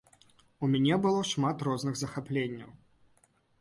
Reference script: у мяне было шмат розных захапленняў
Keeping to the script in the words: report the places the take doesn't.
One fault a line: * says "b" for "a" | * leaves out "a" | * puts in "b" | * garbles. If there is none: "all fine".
all fine